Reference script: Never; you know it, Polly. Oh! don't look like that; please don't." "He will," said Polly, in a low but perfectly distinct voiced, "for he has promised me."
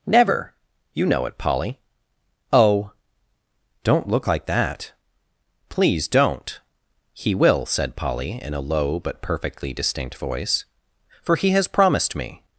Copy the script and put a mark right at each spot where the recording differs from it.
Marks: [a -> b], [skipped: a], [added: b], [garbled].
Never; you know it, Polly. Oh! don't look like that; please don't." "He will," said Polly, in a low but perfectly distinct [voiced, -> voice] "for he has promised me."